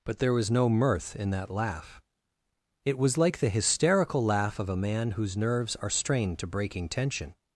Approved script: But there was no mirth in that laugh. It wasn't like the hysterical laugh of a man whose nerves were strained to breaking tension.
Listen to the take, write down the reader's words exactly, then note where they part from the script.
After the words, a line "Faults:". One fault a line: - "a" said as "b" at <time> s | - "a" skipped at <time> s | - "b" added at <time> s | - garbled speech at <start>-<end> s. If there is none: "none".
But there was no mirth in that laugh. It was like the hysterical laugh of a man whose nerves are strained to breaking tension.
Faults:
- "wasn't" said as "was" at 3.0 s
- "were" said as "are" at 5.8 s